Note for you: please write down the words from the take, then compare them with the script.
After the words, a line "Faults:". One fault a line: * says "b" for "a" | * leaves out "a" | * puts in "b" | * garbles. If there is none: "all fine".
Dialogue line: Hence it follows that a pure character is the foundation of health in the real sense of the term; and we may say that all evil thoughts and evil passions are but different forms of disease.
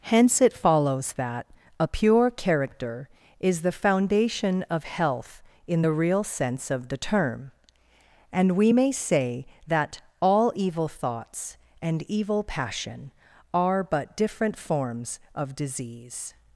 Hence it follows that a pure character is the foundation of health in the real sense of the term; and we may say that all evil thoughts and evil passion are but different forms of disease.
Faults:
* says "passion" for "passions"